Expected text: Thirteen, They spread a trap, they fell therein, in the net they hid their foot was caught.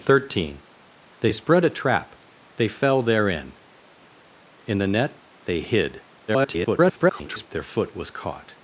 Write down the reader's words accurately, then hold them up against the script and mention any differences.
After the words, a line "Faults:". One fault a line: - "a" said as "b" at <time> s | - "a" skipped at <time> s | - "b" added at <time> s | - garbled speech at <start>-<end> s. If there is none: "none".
Thirteen, They spread a trap, they fell therein, in the net they hid [garbled] their foot was caught.
Faults:
- garbled speech at 6.3-7.5 s